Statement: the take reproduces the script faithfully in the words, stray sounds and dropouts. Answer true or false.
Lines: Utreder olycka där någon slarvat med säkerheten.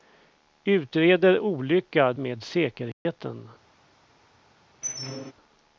false